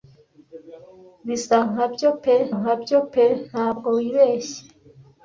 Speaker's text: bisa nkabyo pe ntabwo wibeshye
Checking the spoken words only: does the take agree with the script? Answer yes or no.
no